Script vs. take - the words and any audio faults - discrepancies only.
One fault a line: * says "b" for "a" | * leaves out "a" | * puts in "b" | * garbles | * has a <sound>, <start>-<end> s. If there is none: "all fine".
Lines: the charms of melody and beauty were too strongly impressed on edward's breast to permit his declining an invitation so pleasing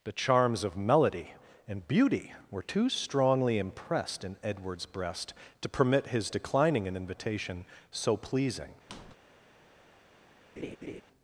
* says "in" for "on"
* has a squeak, 8.9-9.2 s
* has a laugh, 10.6-11.0 s